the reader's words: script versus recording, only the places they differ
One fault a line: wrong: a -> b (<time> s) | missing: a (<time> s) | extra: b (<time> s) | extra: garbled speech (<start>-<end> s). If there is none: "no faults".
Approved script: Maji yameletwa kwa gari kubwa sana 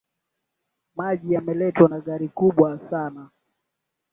wrong: kwa -> na (1.9 s)